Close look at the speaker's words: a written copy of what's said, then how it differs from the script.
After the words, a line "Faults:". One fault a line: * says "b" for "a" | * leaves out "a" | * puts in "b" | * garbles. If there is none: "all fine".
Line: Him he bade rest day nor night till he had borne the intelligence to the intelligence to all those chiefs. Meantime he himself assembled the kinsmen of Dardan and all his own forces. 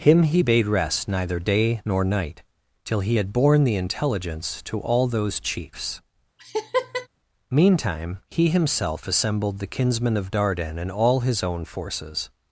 Him he bade rest neither day nor night till he had borne the intelligence to all those chiefs. Meantime he himself assembled the kinsmen of Dardan and all his own forces.
Faults:
* puts in "neither"
* leaves out "the intelligence to"